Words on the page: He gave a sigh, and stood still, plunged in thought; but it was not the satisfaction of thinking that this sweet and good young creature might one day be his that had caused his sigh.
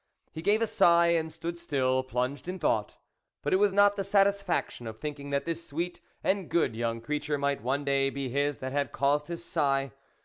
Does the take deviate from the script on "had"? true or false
false